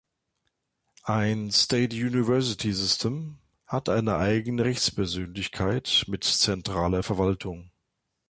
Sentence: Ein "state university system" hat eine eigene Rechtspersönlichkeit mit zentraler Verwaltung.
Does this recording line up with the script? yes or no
yes